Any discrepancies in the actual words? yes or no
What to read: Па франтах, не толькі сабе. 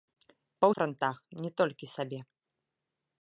no